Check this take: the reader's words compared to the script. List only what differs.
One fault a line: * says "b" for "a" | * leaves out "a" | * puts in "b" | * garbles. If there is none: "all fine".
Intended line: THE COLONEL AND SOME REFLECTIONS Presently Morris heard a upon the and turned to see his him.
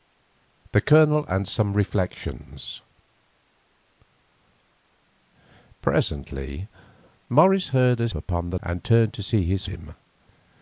all fine